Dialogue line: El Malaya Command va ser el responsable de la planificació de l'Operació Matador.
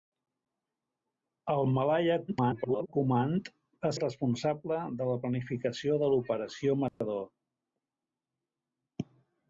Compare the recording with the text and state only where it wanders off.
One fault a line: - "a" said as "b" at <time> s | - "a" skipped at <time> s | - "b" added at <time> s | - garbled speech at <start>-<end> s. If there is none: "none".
- garbled speech at 2.3-2.9 s
- "ser" skipped at 3.9 s